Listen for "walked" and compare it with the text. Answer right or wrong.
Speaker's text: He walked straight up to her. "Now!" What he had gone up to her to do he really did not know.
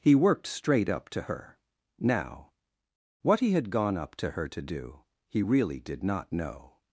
wrong